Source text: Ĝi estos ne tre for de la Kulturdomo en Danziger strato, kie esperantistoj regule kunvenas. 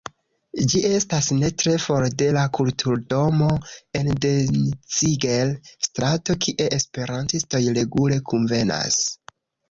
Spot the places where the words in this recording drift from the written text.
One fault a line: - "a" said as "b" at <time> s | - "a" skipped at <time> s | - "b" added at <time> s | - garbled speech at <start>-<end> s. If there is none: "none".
- "estos" said as "estas" at 0.9 s